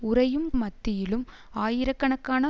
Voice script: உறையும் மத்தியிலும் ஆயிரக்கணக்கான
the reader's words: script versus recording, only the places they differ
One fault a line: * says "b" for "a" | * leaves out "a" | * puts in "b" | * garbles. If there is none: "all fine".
all fine